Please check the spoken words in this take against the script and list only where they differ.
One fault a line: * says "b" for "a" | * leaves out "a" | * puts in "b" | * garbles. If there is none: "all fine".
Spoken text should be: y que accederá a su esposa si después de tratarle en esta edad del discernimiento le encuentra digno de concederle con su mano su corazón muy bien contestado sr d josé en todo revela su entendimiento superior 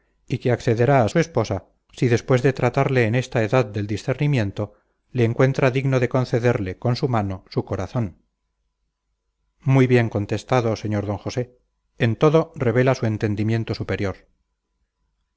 all fine